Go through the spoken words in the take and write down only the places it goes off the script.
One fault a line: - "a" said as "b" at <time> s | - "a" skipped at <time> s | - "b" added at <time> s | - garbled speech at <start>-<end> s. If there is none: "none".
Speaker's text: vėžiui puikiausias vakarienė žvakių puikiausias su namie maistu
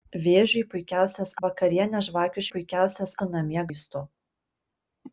none